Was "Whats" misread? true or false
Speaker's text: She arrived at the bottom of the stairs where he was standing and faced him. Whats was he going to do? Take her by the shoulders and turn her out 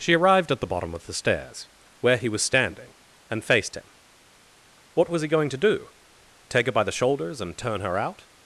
true